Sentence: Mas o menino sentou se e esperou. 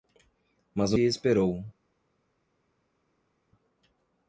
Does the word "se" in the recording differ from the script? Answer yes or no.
yes